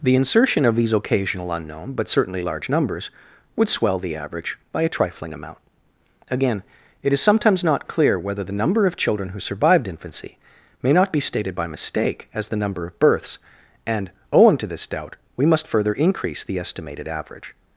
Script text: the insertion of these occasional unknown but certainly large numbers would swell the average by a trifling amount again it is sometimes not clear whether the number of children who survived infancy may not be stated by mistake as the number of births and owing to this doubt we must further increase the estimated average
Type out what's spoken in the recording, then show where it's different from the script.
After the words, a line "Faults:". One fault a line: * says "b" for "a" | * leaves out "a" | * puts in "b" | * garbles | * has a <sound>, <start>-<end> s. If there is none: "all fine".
the insertion of these occasional unknown but certainly large numbers would swell the average by a trifling amount again it is sometimes not clear whether the number of children who survived infancy may not be stated by mistake as the number of births and owing to this doubt we must further increase the estimated average
Faults:
all fine